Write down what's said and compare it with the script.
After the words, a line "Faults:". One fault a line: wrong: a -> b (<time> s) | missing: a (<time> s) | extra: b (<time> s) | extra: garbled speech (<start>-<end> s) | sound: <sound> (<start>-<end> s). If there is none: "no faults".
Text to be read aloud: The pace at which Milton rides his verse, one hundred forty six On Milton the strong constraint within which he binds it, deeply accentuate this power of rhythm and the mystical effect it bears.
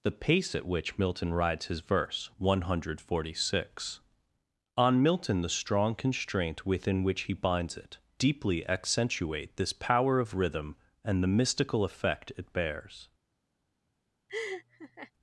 The pace at which Milton rides his verse, one hundred forty six On Milton the strong constraint within which he binds it, deeply accentuate this power of rhythm and the mystical effect it bears.
Faults:
sound: laugh (14.3-15.1 s)